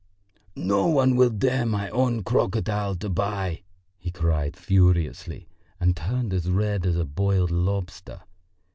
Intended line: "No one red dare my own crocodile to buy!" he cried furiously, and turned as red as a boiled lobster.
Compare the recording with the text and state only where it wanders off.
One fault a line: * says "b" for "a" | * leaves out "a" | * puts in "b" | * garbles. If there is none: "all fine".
* says "will" for "red"